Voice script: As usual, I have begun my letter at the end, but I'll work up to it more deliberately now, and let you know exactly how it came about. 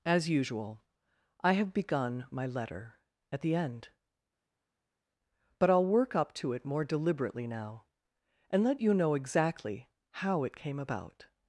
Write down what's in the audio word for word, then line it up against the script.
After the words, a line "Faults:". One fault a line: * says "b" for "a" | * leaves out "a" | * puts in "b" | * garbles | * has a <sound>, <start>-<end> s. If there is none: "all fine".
As usual, I have begun my letter at the end, but I'll work up to it more deliberately now, and let you know exactly how it came about.
Faults:
all fine